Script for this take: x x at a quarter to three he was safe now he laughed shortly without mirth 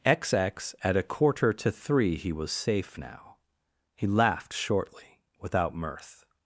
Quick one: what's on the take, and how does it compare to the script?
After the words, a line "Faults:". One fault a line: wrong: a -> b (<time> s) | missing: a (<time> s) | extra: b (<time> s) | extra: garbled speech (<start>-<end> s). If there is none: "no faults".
x x at a quarter to three he was safe now he laughed shortly without mirth
Faults:
no faults